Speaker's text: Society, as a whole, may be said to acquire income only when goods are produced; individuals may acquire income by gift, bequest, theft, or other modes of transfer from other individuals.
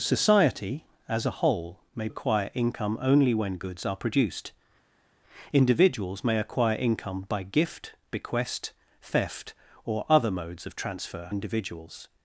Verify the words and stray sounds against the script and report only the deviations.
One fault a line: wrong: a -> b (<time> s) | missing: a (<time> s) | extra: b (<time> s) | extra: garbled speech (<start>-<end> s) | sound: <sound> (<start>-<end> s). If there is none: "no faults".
missing: be said to (2.1 s)
missing: from other (11.3 s)